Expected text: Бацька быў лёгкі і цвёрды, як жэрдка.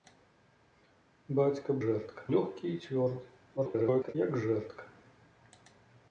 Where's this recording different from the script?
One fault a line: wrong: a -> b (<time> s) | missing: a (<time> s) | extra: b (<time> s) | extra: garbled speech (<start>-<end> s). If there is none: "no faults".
wrong: быў -> жэрдка (1.9 s)
extra: garbled speech (3.6-4.2 s)